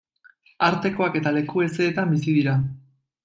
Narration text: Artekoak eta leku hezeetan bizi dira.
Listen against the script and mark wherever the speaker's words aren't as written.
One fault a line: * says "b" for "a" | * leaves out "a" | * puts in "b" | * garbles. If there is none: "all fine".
all fine